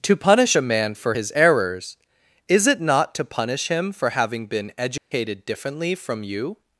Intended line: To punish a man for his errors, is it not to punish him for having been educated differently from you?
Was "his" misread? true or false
false